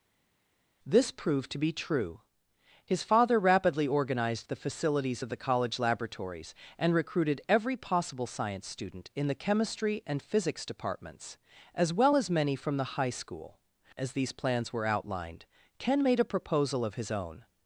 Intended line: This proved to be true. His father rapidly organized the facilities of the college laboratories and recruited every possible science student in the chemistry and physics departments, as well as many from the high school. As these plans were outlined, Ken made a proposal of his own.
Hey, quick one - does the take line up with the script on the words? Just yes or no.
yes